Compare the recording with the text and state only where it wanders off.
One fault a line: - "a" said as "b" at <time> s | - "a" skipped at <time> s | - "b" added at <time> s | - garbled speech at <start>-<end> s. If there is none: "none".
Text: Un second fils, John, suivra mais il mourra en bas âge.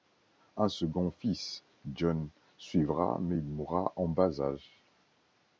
none